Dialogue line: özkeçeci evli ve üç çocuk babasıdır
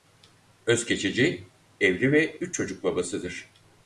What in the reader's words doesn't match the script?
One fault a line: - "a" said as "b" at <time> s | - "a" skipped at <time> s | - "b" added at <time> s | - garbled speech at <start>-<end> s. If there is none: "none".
none